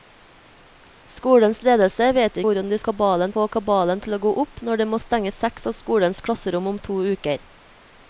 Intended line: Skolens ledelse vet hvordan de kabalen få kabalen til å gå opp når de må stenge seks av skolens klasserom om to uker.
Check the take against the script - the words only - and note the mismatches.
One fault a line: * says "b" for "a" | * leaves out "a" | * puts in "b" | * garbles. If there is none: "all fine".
all fine